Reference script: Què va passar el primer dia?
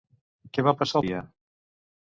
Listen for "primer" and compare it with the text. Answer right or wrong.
wrong